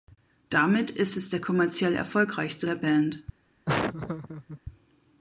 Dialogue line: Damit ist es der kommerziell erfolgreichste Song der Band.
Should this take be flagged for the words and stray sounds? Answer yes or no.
yes